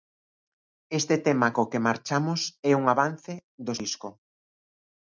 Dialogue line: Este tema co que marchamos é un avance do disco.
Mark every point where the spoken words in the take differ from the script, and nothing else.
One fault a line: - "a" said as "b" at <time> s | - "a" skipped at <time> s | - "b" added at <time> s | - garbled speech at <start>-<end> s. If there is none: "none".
none